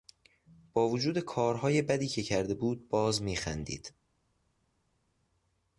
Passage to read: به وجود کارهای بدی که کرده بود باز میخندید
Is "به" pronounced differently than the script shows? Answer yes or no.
yes